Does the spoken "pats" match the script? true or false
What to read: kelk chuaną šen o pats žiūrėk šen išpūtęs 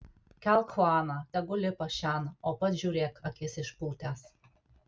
true